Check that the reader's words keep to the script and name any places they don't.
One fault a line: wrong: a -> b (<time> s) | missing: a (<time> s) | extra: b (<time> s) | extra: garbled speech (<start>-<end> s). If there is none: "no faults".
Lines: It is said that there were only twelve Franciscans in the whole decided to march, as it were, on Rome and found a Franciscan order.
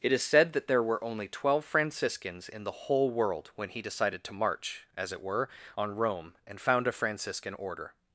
extra: world when he (3.1 s)